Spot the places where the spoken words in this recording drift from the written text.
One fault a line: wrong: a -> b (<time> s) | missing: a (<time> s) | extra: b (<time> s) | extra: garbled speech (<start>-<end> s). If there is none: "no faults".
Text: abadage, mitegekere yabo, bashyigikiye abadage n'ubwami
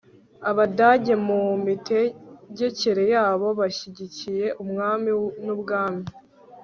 extra: mu (1.3 s)
wrong: abadage -> umwami (4.6 s)